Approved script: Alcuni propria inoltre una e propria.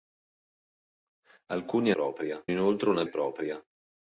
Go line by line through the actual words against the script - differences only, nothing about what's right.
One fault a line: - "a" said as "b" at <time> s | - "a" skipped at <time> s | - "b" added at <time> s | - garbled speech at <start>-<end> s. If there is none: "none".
none